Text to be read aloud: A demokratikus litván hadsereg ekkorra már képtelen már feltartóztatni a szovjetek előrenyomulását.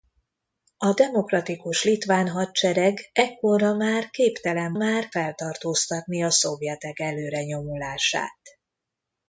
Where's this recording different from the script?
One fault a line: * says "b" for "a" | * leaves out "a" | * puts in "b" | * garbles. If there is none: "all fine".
all fine